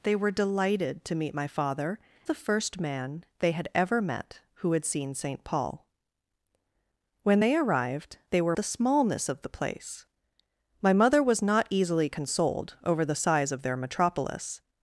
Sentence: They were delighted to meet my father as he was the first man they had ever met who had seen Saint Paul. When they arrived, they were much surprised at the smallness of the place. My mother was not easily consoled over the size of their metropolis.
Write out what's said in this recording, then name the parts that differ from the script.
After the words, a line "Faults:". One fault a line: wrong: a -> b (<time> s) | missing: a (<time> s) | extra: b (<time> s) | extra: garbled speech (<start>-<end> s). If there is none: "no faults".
They were delighted to meet my father the first man they had ever met who had seen Saint Paul. When they arrived, they were the smallness of the place. My mother was not easily consoled over the size of their metropolis.
Faults:
missing: as he was (2.0 s)
missing: much surprised at (8.6 s)